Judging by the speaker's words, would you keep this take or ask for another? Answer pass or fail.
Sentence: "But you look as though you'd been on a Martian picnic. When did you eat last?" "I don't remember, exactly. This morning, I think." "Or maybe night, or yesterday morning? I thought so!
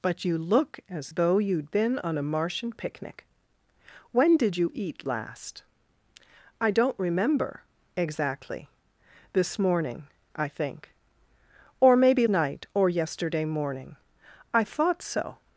pass